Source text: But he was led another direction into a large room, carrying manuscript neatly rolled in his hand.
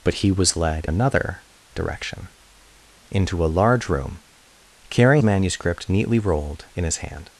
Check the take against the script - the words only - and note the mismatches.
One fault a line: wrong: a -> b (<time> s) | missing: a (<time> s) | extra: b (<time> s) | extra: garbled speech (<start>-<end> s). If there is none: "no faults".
no faults